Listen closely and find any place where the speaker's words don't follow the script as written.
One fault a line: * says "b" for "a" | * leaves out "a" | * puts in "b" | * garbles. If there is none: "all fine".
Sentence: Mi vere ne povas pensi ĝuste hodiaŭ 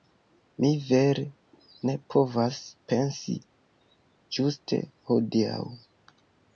all fine